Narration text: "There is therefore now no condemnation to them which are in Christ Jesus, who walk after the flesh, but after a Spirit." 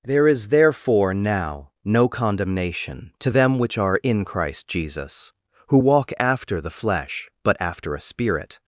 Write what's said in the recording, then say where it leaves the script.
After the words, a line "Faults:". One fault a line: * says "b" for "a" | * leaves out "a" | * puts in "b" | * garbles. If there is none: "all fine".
"There is therefore now no condemnation to them which are in Christ Jesus, who walk after the flesh, but after a Spirit."
Faults:
all fine